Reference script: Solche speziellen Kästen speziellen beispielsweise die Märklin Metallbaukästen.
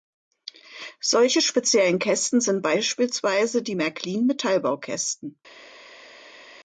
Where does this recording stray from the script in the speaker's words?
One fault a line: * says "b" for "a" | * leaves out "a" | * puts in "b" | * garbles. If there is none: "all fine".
* says "sind" for "speziellen"